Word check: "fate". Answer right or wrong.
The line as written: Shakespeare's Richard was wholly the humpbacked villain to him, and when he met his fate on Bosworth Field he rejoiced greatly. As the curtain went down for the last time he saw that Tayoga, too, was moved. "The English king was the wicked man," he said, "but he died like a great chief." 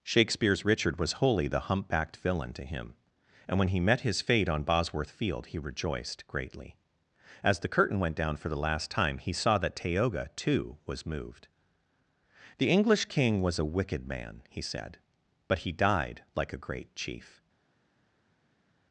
right